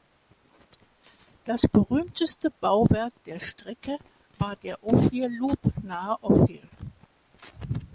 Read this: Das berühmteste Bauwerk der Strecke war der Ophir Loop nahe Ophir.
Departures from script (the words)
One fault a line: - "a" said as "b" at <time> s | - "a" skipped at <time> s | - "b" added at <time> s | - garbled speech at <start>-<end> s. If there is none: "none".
none